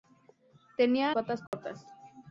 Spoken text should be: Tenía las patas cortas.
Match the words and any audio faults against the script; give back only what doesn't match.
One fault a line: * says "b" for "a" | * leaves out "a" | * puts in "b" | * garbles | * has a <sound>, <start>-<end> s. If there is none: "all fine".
* leaves out "las"
* has a dropout, 1.5-1.5 s